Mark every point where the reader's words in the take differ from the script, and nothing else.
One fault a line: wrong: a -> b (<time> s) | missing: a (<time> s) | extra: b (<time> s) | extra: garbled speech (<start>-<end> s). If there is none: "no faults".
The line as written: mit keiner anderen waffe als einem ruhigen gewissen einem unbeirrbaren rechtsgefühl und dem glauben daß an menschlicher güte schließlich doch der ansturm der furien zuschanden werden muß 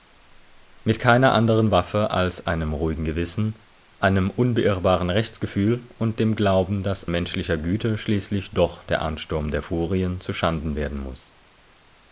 missing: an (7.1 s)